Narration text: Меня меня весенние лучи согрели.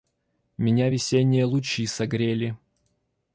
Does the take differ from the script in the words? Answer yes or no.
yes